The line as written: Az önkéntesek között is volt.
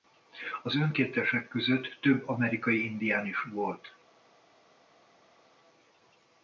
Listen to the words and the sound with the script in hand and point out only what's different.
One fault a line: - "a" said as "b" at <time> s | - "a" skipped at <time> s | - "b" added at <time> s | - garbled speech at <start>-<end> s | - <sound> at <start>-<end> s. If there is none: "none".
- "több amerikai indián" added at 2.0 s